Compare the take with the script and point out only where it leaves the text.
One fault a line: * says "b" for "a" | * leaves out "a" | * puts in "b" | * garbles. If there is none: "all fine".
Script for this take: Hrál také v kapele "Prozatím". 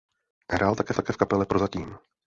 * puts in "také"